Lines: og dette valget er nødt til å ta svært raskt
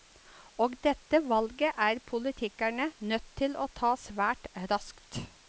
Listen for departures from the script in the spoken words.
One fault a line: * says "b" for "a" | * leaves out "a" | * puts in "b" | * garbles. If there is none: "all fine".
* puts in "politikerne"